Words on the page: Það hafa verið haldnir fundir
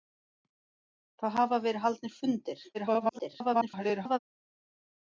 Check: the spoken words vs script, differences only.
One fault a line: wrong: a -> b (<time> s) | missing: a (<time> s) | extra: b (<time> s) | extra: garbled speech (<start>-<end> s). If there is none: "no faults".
extra: garbled speech (2.7-4.2 s)